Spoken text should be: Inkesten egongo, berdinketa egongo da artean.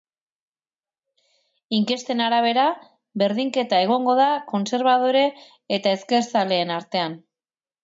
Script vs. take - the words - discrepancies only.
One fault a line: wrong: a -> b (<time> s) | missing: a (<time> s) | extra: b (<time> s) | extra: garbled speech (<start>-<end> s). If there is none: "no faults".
wrong: egongo -> arabera (2.3 s)
extra: kontserbadore eta ezkerzaleen (4.5 s)